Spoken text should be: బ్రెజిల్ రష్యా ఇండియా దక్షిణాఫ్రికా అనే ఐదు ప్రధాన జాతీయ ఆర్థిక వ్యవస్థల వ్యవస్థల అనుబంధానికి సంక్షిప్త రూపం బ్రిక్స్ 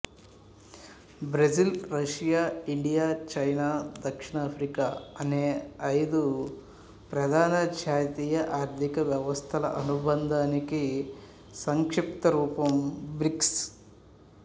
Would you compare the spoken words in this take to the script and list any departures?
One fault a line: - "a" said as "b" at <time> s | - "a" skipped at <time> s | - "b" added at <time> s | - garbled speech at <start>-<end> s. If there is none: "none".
- "చైనా" added at 3.3 s
- "వ్యవస్థల" skipped at 9.7 s